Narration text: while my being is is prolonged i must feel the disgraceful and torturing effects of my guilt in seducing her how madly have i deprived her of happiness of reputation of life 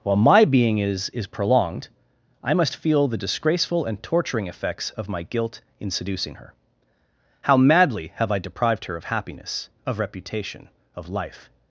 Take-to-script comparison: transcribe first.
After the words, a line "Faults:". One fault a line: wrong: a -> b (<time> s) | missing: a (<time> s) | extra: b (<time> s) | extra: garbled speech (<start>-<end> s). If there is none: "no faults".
while my being is is prolonged i must feel the disgraceful and torturing effects of my guilt in seducing her how madly have i deprived her of happiness of reputation of life
Faults:
no faults